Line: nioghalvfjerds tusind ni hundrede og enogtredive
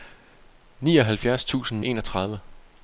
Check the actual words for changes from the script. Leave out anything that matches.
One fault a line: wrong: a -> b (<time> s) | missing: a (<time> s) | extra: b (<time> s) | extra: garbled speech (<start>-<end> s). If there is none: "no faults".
missing: ni hundrede og (1.9 s)